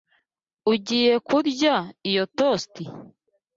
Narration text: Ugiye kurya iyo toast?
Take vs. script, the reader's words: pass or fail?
pass